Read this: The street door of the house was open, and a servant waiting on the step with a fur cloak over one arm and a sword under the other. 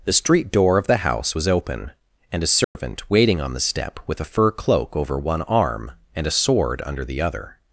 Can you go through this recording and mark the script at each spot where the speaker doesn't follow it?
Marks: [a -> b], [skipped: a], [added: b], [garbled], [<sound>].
The street door of the house was open, and a servant [dropout] waiting on the step with a fur cloak over one arm and a sword under the other.